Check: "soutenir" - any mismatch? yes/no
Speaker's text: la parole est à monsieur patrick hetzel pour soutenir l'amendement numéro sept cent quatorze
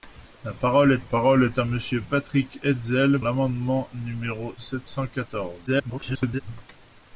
yes